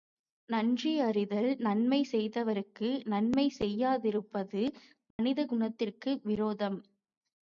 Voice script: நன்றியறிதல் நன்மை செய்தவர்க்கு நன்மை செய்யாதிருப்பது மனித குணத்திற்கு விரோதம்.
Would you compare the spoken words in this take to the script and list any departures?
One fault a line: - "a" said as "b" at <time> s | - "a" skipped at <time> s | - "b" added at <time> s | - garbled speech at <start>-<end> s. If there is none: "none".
none